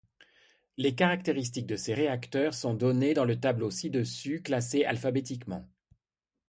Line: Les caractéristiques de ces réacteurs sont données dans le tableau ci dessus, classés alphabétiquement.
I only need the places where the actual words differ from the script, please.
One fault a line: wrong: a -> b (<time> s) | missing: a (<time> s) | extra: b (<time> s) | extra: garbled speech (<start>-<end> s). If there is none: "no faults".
no faults